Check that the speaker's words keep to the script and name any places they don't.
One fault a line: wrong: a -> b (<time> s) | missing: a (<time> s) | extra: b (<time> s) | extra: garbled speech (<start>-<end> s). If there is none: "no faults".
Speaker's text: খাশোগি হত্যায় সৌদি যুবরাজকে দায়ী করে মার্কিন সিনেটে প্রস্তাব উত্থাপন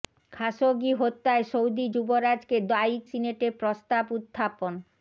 missing: করে মার্কিন (3.0 s)